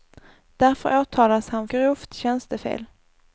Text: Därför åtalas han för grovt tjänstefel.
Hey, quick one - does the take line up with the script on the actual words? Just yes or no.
no